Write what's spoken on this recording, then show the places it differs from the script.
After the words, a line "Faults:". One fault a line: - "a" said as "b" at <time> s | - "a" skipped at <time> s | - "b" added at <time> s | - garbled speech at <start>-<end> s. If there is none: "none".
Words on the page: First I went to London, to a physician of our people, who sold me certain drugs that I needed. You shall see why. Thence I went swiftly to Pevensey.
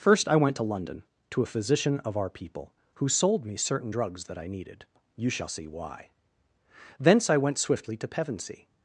First I went to London, to a physician of our people, who sold me certain drugs that I needed. You shall see why. Thence I went swiftly to Pevensey.
Faults:
none